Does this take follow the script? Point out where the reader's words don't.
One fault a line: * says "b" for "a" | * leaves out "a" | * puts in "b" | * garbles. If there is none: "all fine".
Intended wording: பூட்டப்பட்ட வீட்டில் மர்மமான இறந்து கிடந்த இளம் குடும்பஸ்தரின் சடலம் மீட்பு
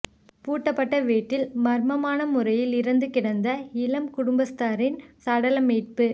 * puts in "முறையில்"